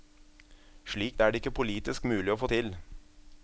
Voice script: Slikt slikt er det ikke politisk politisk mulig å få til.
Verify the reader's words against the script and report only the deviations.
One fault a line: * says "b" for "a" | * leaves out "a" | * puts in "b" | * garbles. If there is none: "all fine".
* leaves out "slikt"
* leaves out "politisk"